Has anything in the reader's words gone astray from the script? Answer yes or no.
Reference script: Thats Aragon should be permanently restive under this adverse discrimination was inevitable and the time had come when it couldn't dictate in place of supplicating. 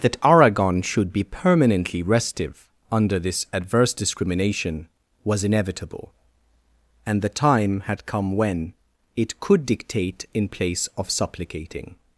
yes